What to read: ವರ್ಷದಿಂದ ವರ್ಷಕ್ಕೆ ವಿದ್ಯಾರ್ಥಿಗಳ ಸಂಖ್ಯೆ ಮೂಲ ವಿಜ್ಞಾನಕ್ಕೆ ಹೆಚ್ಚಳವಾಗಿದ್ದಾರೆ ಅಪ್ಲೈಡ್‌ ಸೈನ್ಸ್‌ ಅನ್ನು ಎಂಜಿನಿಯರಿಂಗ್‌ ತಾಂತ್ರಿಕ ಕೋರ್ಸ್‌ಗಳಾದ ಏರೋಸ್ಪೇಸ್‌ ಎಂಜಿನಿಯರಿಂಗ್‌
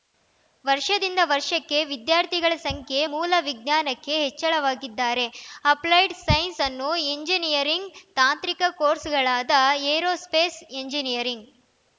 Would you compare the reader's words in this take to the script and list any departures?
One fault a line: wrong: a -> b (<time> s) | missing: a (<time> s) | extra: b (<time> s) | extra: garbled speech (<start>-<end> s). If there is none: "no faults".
no faults